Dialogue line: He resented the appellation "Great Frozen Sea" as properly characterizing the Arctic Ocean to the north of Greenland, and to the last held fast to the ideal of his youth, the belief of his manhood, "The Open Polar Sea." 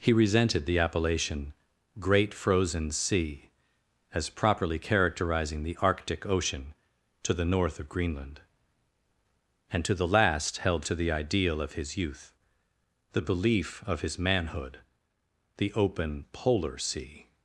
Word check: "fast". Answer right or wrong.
wrong